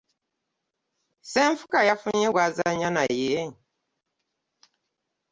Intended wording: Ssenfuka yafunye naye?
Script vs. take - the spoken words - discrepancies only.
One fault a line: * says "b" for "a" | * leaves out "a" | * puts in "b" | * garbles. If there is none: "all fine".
* puts in "gw'azannya"